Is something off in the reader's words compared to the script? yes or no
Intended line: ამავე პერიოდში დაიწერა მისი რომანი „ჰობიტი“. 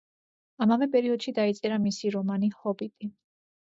no